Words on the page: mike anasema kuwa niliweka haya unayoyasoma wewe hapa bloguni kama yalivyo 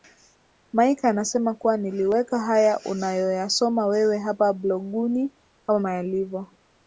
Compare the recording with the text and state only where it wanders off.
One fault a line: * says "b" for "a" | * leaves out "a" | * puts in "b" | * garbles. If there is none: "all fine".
all fine